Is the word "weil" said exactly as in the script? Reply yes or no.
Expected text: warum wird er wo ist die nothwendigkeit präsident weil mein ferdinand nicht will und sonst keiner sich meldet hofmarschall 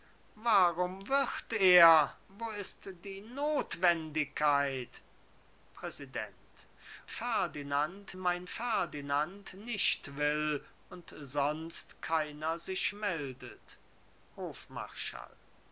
no